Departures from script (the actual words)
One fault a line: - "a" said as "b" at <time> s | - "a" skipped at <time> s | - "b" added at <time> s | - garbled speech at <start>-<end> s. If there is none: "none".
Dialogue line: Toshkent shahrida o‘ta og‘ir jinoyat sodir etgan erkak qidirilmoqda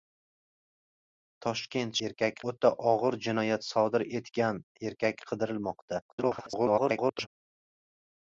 - "shahrida" said as "erkak" at 2.1 s
- garbled speech at 6.1-7.3 s